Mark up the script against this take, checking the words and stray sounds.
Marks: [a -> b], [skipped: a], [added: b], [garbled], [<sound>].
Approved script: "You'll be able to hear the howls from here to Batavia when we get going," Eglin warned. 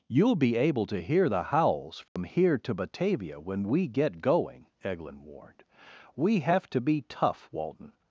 "You'll be able to hear the howls from [dropout] here to Batavia when we get going," Eglin warned. [added: We have to be tough Walton]